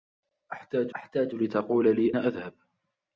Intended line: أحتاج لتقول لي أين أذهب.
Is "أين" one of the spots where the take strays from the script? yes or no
yes